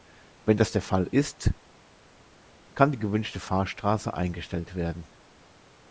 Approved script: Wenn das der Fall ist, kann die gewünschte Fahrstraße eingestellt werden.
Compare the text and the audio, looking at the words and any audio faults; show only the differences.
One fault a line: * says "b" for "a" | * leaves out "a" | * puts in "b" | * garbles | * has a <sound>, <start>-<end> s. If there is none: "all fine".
all fine